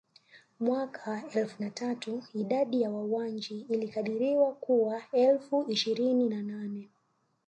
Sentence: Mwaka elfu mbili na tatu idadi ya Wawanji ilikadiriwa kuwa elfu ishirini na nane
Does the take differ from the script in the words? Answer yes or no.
yes